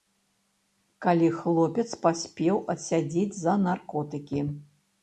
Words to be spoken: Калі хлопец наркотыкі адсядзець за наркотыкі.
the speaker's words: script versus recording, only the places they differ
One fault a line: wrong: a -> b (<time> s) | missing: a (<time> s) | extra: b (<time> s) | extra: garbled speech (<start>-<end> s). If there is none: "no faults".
wrong: наркотыкі -> паспеў (2.1 s)